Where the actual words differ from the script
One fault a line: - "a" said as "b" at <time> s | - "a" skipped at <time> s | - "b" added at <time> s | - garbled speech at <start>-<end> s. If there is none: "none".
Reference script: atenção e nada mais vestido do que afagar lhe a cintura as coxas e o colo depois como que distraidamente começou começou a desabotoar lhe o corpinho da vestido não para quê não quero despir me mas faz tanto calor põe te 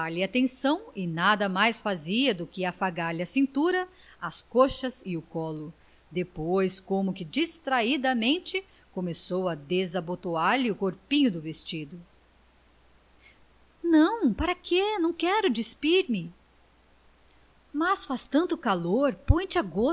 - "vestido" said as "fazia" at 1.8 s
- "começou" skipped at 9.5 s
- "da" said as "do" at 11.3 s